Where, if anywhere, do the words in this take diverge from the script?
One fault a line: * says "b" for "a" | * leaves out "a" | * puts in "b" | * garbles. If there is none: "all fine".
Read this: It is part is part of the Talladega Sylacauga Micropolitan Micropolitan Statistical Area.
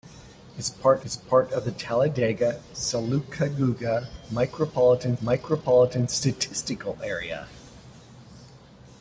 all fine